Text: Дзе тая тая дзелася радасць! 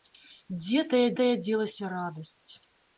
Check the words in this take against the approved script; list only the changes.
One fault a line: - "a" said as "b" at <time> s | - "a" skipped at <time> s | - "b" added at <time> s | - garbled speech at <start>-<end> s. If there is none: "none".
none